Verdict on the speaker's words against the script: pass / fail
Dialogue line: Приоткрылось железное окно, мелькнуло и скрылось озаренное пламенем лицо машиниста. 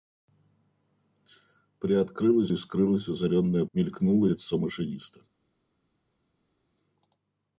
fail